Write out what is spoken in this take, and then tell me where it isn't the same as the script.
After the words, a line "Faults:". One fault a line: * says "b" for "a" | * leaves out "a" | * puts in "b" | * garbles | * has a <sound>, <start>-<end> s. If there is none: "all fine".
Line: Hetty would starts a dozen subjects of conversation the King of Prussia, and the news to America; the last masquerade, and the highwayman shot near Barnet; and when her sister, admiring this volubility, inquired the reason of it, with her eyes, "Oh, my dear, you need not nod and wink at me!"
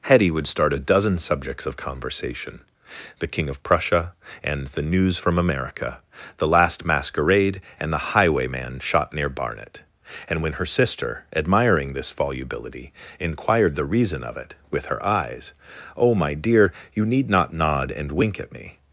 Hetty would start a dozen subjects of conversation the King of Prussia, and the news from America; the last masquerade, and the highwayman shot near Barnet; and when her sister, admiring this volubility, inquired the reason of it, with her eyes, "Oh, my dear, you need not nod and wink at me!"
Faults:
* says "start" for "starts"
* says "from" for "to"